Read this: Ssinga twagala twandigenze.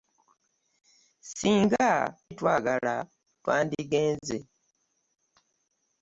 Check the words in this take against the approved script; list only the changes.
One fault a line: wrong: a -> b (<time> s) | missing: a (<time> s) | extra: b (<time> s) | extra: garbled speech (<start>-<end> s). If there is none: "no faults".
no faults